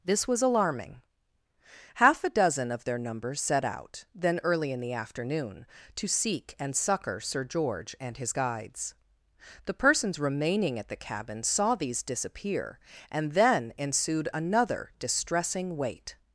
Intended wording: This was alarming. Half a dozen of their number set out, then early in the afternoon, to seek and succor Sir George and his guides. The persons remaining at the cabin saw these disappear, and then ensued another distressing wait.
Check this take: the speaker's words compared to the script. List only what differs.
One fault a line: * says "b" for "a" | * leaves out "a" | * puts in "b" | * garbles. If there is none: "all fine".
all fine